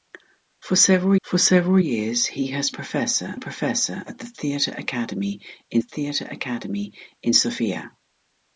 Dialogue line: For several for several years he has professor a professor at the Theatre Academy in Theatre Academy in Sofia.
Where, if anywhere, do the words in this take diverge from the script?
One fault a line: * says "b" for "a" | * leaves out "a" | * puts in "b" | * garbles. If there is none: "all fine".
all fine